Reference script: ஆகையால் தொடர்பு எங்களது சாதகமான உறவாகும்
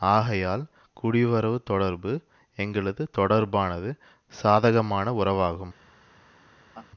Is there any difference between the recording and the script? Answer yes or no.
yes